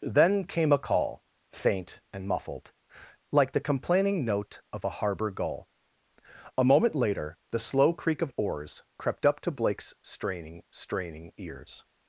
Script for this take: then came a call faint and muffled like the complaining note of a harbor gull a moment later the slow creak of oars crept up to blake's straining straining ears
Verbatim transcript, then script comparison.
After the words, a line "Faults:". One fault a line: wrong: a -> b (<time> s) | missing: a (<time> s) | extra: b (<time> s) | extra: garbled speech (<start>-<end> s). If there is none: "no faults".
then came a call faint and muffled like the complaining note of a harbor gull a moment later the slow creak of oars crept up to blake's straining straining ears
Faults:
no faults